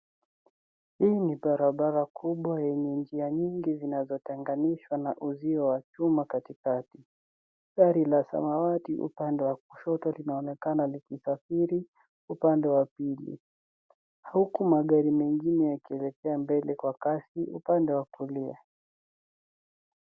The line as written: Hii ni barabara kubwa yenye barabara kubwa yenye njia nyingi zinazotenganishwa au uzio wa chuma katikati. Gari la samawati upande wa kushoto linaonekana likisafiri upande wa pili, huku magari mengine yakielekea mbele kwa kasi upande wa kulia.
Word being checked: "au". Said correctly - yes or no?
no